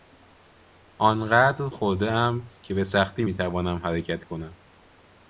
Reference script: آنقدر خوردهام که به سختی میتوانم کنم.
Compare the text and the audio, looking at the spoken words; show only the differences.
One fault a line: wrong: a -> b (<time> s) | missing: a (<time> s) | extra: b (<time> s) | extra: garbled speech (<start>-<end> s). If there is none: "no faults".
extra: حرکت (3.8 s)